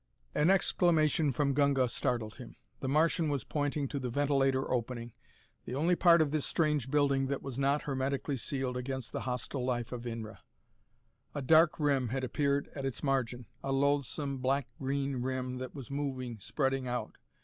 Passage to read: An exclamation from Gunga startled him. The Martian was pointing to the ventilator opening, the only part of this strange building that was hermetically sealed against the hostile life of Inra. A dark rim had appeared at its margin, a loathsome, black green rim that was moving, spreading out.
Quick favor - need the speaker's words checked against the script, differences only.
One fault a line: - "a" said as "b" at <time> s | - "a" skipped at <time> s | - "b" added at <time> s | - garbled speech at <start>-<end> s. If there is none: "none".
- "not" added at 7.6 s